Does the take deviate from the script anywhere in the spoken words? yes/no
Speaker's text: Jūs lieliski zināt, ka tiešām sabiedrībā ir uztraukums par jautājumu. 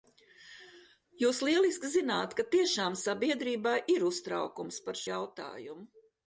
no